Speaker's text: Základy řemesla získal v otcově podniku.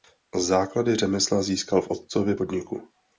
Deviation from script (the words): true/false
false